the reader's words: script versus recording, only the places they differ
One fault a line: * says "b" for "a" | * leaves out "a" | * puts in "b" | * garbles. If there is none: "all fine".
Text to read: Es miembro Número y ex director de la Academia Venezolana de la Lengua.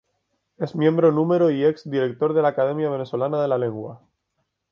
all fine